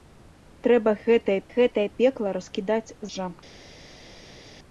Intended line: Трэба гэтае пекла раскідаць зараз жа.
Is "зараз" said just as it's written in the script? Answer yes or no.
no